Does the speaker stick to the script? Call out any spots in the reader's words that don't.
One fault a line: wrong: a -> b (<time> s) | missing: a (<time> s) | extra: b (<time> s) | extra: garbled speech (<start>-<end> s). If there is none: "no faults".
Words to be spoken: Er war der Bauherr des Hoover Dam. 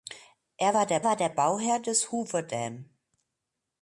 extra: war der (1.0 s)